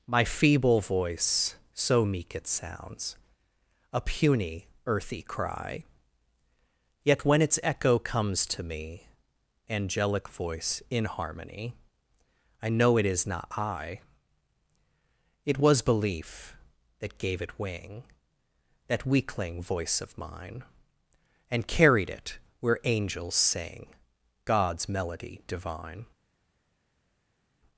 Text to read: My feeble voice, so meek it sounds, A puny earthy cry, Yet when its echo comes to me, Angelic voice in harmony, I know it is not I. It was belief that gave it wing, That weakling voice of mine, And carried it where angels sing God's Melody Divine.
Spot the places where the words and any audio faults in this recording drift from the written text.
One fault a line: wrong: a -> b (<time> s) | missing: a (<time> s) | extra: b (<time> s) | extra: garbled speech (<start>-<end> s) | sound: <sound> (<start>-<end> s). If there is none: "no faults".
no faults